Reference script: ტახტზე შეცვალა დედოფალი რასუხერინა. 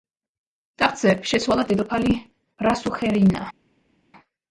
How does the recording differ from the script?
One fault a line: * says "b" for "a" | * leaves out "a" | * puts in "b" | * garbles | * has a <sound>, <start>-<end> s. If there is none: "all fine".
all fine